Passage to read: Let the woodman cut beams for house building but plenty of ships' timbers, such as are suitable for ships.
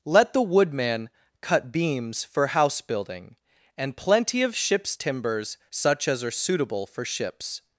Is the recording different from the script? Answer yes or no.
yes